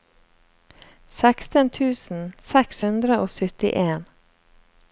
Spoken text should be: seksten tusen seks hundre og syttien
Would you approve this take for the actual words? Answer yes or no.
yes